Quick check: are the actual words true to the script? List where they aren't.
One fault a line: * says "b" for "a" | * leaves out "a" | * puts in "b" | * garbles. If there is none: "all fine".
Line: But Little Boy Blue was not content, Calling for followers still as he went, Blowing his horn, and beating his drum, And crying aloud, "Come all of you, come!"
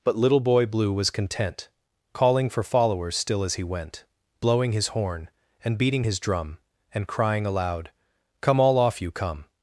* leaves out "not"
* says "off" for "of"